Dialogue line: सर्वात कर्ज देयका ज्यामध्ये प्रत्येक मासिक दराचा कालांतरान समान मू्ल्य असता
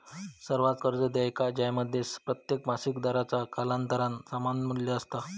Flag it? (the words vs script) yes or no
no